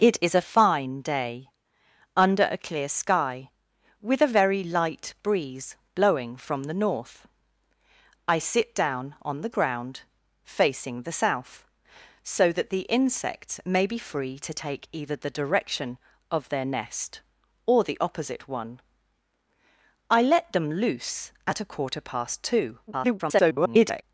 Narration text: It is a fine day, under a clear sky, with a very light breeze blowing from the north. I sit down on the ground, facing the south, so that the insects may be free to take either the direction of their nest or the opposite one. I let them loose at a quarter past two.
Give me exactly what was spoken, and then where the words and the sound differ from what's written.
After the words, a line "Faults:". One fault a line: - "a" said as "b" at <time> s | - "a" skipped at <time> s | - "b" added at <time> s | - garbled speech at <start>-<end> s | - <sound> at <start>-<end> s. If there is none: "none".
It is a fine day, under a clear sky, with a very light breeze blowing from the north. I sit down on the ground, facing the south, so that the insects may be free to take either the direction of their nest or the opposite one. I let them loose at a quarter past two. [garbled]
Faults:
- garbled speech at 22.9-24.0 s